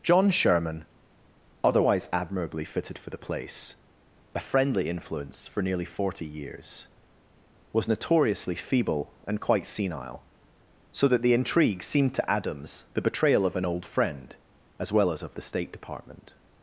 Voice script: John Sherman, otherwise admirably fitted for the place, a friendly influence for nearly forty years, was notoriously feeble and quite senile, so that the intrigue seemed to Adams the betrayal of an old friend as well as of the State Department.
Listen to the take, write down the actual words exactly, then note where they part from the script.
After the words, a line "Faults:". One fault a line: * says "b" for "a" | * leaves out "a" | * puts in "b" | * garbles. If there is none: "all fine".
John Sherman, otherwise admirably fitted for the place, a friendly influence for nearly forty years, was notoriously feeble and quite senile, so that the intrigue seemed to Adams the betrayal of an old friend as well as of the State Department.
Faults:
all fine